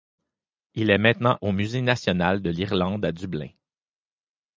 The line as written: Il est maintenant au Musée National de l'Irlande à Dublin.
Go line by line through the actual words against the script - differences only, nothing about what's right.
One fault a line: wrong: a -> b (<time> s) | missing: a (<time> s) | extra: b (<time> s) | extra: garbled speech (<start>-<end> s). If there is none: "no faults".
no faults